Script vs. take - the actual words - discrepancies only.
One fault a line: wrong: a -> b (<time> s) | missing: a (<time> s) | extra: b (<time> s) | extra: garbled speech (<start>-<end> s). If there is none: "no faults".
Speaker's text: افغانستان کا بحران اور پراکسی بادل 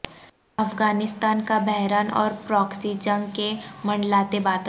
extra: جنگ کے منڈلاتے (3.0 s)